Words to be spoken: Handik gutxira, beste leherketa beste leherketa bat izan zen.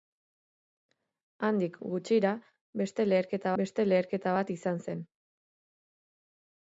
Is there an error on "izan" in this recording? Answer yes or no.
no